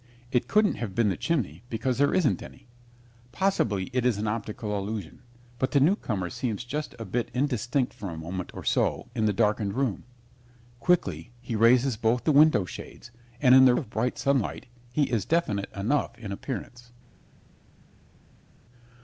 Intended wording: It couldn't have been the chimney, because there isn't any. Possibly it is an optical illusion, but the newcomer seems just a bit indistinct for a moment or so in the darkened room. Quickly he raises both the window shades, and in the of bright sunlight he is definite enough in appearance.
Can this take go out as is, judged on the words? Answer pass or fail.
pass